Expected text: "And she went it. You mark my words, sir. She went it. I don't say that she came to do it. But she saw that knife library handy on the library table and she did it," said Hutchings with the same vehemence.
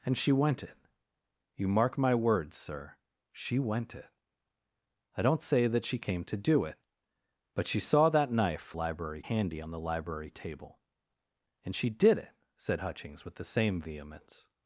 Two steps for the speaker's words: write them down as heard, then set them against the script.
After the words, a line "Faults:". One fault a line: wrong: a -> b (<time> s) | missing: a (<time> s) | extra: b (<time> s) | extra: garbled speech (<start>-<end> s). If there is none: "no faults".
"And she went it. You mark my words, sir. She went it. I don't say that she came to do it. But she saw that knife library handy on the library table and she did it," said Hutchings with the same vehemence.
Faults:
no faults